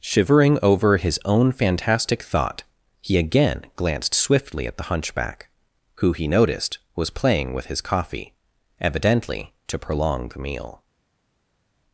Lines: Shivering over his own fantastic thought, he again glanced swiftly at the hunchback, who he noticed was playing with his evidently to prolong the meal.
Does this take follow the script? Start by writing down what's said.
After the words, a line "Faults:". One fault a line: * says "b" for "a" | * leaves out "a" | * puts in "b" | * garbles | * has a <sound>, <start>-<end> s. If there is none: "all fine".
Shivering over his own fantastic thought, he again glanced swiftly at the hunchback, who he noticed was playing with his coffee, evidently to prolong the meal.
Faults:
* puts in "coffee"